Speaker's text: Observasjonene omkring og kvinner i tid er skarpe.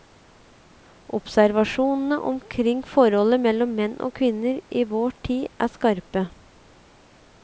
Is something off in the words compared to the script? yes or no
yes